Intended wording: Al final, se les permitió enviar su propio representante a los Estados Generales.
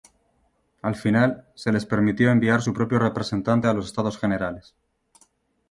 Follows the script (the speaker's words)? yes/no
yes